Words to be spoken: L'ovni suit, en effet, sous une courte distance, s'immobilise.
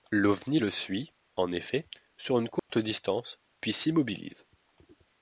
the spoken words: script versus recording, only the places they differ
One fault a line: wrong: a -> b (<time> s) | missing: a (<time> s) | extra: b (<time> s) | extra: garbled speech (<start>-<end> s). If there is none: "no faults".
extra: le (0.5 s)
wrong: sous -> sur (2.2 s)
extra: puis (3.6 s)